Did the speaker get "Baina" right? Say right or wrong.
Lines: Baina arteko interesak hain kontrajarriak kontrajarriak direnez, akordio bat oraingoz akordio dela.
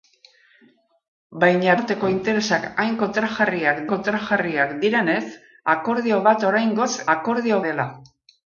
right